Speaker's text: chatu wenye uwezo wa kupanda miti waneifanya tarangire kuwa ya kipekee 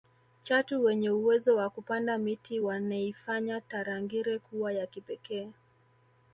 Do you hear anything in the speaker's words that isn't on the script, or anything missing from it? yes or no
no